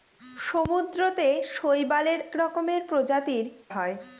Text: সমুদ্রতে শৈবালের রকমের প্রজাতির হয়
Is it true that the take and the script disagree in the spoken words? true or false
false